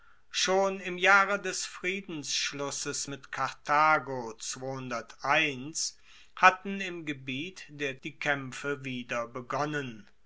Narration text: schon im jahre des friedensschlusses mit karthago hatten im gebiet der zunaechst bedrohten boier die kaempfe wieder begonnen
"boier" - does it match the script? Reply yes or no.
no